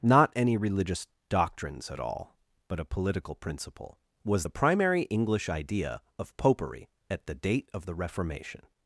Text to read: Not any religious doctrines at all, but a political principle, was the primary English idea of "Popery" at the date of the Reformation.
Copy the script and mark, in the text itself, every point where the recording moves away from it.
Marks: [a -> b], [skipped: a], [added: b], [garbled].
Not any religious doctrines at all, but a political principle, was the primary English idea of "Popery" at the date of the Reformation.